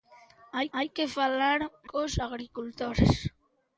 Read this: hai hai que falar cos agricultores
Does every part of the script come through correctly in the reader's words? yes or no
yes